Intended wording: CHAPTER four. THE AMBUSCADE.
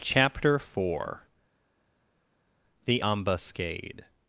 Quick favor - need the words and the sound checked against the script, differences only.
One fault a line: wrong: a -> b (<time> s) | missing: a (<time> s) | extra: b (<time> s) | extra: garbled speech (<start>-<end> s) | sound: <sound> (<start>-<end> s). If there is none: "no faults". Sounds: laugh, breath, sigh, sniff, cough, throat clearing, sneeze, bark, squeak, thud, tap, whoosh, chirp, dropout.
no faults